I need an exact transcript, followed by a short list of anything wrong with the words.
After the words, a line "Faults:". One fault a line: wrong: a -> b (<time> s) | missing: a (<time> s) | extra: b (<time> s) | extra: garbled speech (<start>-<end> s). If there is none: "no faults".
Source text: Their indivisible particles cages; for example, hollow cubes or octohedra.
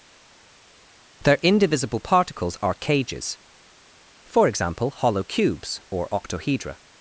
Their indivisible particles are cages; for example, hollow cubes or octohedra.
Faults:
extra: are (2.6 s)